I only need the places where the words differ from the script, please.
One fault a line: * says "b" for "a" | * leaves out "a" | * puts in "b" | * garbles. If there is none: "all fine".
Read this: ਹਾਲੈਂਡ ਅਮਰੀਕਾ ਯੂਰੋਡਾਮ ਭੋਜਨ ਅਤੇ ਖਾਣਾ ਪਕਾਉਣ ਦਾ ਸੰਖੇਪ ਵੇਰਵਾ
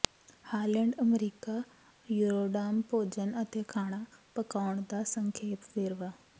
all fine